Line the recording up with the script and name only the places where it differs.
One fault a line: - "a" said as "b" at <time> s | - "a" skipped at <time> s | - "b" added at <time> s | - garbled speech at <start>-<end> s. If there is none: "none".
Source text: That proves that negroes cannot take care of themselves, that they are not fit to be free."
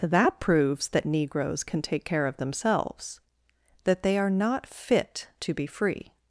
- "cannot" said as "can" at 1.6 s